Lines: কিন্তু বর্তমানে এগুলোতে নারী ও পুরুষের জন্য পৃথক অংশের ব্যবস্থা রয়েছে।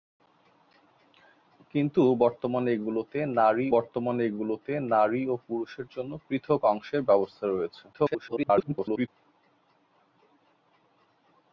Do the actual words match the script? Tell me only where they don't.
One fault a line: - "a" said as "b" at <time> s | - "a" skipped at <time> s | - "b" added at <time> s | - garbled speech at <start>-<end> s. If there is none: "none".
- "বর্তমানে এগুলোতে নারী" added at 3.7 s
- garbled speech at 7.9-9.1 s